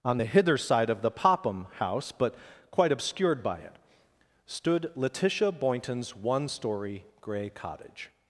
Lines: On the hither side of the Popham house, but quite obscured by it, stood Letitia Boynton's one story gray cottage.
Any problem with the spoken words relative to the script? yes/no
no